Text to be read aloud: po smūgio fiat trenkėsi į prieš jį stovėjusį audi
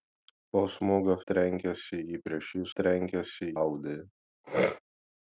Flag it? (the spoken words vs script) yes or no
yes